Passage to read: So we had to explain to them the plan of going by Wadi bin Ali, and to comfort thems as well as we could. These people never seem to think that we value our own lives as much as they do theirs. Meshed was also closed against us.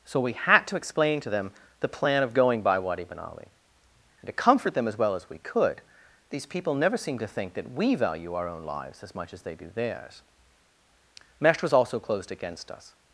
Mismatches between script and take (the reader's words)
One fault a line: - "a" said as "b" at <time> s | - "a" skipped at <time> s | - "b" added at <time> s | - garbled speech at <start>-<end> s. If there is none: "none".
- "thems" said as "them" at 4.7 s